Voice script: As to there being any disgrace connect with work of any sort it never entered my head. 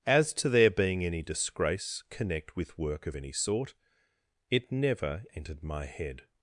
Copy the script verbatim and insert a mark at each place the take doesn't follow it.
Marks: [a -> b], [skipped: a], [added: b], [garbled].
As to there being any disgrace connect with work of any sort it never entered my head.